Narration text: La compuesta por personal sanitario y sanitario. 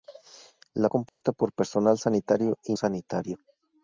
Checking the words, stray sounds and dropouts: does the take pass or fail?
fail